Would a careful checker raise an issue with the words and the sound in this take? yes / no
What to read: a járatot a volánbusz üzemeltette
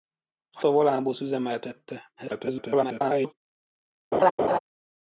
yes